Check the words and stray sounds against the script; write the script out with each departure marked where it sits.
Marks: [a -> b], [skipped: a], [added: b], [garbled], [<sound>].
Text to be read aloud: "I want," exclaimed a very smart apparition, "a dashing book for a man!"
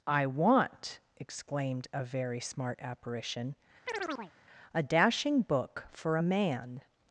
"I want," exclaimed a very smart apparition, [chirp] "a dashing book for a man!"